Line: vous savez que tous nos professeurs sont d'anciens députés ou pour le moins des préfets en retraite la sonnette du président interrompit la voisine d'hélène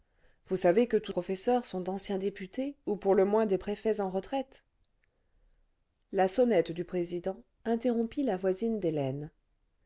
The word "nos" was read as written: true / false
false